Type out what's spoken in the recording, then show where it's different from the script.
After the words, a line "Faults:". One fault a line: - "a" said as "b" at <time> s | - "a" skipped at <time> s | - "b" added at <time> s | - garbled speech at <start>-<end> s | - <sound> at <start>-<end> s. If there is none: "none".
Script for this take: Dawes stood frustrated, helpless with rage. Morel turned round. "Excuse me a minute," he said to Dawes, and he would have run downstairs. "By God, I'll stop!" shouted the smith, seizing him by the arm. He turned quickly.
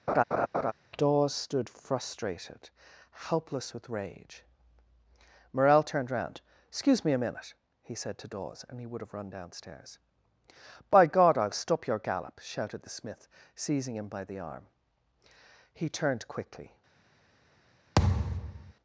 Dawes stood frustrated, helpless with rage. Morel turned round. "Excuse me a minute," he said to Dawes, and he would have run downstairs. "By God, I'll stop your gallop!" shouted the smith, seizing him by the arm. He turned quickly.
Faults:
- laugh at 0.1-0.7 s
- "your gallop" added at 11.9 s
- thud at 18.0-18.7 s